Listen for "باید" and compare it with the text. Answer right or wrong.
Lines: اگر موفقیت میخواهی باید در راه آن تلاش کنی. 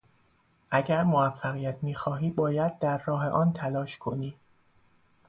right